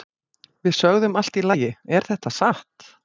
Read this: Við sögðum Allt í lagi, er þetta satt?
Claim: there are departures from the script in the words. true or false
false